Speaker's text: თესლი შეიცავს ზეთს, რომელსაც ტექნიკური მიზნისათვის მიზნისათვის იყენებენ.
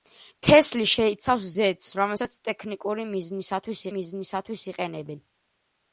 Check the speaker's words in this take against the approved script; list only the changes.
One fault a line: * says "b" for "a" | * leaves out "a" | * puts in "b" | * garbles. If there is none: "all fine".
all fine